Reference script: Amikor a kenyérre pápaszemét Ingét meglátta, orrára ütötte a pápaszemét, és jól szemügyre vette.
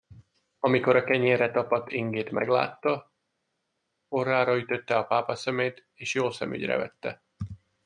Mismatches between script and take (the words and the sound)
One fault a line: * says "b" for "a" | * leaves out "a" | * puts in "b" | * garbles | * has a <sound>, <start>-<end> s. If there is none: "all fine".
* says "tapadt" for "pápaszemét"